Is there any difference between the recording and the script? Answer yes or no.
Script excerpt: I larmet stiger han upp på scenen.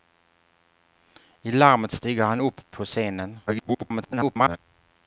yes